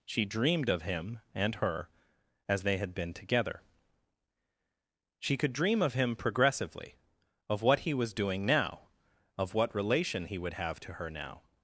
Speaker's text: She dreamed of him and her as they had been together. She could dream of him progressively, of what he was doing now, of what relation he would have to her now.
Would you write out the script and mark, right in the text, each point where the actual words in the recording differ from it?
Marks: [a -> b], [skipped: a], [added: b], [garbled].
She dreamed of him and her as they had been together. She could dream of him progressively, of what he was doing now, of what relation he would have to her now.